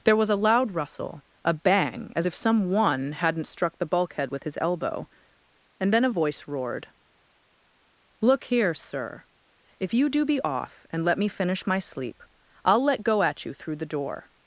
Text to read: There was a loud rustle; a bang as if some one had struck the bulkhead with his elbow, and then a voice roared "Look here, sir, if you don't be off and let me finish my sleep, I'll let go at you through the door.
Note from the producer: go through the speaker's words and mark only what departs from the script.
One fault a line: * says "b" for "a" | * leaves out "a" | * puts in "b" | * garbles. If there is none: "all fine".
* says "hadn't" for "had"
* says "do" for "don't"